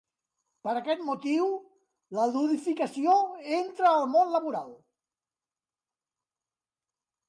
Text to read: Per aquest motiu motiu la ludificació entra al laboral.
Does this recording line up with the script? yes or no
no